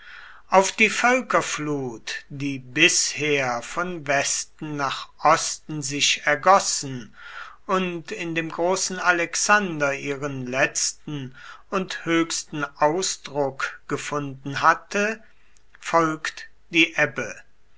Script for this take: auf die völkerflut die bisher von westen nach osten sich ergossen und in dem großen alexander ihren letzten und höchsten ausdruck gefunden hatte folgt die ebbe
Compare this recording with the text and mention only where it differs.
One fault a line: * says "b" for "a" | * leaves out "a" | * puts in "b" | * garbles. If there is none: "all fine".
all fine